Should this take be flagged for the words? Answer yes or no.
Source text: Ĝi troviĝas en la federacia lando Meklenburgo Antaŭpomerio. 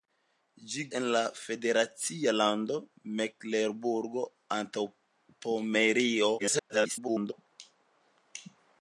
yes